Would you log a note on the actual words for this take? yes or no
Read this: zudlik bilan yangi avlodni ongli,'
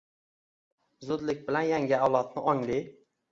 no